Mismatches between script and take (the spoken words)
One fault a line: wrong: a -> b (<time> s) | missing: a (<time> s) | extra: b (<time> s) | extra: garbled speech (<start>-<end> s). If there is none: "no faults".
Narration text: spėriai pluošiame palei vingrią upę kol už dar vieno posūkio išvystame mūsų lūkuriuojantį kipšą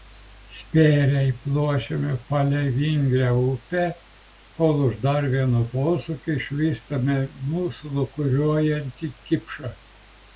no faults